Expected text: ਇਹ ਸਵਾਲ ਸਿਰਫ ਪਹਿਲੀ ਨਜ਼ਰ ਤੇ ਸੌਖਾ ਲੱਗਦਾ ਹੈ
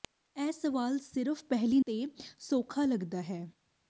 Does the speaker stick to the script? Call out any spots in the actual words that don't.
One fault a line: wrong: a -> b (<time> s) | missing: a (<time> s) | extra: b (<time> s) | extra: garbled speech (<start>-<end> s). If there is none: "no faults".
missing: ਨਜ਼ਰ (1.8 s)